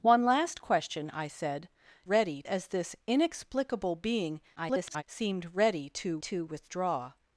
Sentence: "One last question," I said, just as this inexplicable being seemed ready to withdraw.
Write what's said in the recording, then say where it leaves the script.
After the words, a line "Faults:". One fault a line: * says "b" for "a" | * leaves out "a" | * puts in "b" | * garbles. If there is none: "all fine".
"One last question," I said, ready as this inexplicable being [garbled] seemed ready to to withdraw.
Faults:
* says "ready" for "just"
* garbles
* puts in "to"